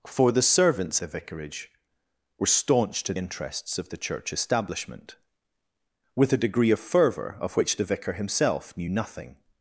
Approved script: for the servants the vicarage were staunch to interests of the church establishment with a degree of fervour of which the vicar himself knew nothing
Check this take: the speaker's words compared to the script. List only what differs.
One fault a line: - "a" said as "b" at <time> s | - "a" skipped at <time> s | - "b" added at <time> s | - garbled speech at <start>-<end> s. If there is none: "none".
none